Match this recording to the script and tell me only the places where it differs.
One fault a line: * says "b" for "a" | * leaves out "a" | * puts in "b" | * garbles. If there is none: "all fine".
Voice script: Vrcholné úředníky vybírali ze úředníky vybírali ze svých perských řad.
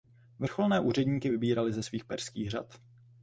* leaves out "úředníky vybírali ze"